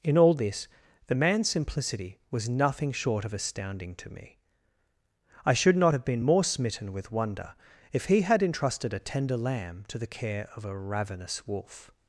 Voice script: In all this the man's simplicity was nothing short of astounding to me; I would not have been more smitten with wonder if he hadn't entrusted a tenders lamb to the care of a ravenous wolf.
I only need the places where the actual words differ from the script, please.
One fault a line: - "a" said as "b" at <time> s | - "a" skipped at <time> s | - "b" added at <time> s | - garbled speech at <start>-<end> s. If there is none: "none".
- "would" said as "should" at 5.5 s
- "hadn't" said as "had" at 8.2 s
- "tenders" said as "tender" at 9.0 s